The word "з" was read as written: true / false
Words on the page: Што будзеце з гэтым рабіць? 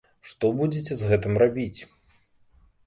true